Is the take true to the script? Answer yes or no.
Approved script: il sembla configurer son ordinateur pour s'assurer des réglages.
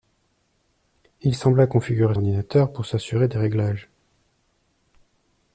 no